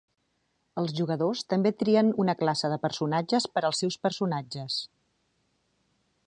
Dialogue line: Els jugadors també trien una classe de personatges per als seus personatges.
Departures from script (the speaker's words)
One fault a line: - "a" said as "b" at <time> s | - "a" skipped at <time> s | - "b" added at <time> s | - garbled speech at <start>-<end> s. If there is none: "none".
none